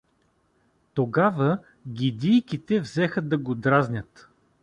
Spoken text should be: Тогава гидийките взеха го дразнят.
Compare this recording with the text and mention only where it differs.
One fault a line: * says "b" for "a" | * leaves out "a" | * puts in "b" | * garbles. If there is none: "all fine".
* puts in "да"